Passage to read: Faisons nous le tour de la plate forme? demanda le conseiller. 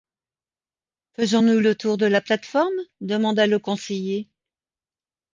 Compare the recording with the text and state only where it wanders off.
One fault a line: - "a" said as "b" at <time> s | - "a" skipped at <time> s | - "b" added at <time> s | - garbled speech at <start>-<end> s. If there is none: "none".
none